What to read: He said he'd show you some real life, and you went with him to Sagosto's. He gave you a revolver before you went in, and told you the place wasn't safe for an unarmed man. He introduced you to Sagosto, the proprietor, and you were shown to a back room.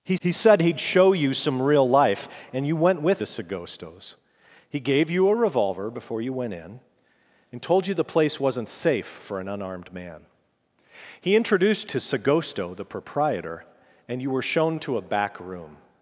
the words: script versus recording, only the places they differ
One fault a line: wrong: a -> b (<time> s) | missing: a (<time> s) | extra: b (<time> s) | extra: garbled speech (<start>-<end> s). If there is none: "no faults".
extra: he (0.2 s)
missing: him (3.2 s)
missing: you (11.9 s)